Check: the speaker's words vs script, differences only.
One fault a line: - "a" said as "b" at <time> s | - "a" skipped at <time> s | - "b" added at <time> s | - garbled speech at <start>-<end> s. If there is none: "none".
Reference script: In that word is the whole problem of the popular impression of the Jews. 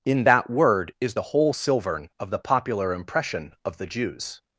- "problem" said as "silvern" at 1.5 s